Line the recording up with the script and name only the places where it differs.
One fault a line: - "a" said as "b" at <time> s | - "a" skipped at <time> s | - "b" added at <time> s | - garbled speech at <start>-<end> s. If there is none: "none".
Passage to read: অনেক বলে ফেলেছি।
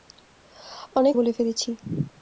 none